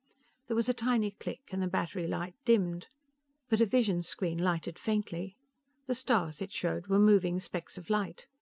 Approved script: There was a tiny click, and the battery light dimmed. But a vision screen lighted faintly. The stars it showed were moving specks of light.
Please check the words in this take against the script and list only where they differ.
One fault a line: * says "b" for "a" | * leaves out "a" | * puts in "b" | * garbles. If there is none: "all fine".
all fine